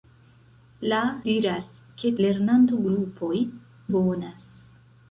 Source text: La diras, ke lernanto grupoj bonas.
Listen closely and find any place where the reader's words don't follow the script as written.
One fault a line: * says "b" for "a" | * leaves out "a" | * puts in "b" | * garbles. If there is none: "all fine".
all fine